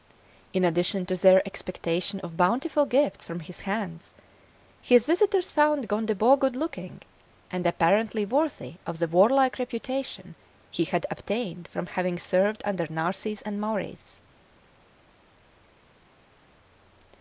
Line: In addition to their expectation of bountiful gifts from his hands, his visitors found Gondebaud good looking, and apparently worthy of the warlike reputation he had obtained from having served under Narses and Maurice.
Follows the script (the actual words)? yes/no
yes